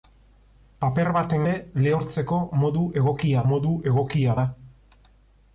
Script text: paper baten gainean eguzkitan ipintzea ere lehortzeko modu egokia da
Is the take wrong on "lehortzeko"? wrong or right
wrong